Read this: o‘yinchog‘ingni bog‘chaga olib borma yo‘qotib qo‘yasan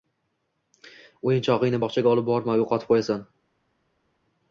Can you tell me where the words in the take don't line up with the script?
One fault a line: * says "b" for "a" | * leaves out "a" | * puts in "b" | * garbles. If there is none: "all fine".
all fine